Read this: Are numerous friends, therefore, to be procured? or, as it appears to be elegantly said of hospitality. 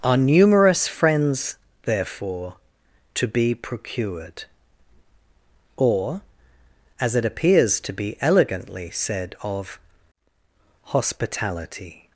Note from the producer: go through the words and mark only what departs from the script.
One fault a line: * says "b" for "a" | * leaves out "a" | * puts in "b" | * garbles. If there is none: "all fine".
all fine